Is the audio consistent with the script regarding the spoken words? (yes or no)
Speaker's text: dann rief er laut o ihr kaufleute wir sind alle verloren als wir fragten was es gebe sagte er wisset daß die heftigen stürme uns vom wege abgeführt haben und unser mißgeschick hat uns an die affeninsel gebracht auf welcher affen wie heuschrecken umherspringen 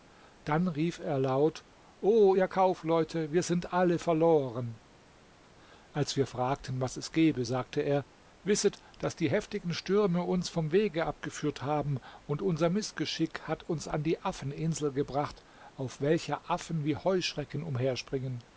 yes